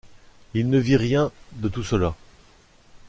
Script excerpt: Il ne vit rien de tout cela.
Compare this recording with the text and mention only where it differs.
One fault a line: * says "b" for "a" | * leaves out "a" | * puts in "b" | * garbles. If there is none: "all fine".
all fine